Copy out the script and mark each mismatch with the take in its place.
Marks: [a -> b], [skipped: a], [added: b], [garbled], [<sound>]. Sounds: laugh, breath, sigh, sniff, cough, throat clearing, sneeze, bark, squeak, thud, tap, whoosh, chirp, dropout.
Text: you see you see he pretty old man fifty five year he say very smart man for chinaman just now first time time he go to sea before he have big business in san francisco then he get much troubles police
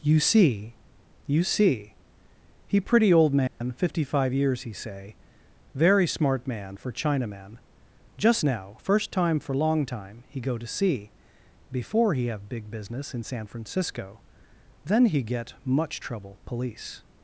you see you see he pretty old man [dropout] fifty five [year -> years] he say very smart man for chinaman just now first time [added: for long] time he go to sea before he have big business in san francisco then he get much [troubles -> trouble] police